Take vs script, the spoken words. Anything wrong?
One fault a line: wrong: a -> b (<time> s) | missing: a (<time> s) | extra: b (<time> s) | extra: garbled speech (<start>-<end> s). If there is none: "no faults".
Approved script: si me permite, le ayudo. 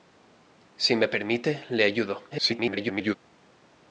extra: garbled speech (2.3-3.2 s)